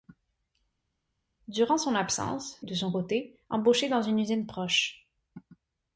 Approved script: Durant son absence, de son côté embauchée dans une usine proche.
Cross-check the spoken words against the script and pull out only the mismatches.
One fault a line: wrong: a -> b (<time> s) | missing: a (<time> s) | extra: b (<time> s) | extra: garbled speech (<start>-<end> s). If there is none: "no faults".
no faults